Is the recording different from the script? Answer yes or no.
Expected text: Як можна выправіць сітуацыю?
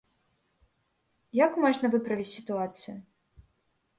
no